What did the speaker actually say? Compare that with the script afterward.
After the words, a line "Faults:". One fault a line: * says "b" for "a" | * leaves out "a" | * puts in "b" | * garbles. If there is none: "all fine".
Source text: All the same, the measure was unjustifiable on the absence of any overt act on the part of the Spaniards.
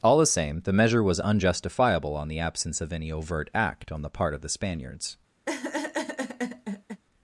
All the same, the measure was unjustifiable on the absence of any overt act on the part of the Spaniards.
Faults:
all fine